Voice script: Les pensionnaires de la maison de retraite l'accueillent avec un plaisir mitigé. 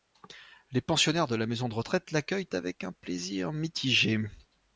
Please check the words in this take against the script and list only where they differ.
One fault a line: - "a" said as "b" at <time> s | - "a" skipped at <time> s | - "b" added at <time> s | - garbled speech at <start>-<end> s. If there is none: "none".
none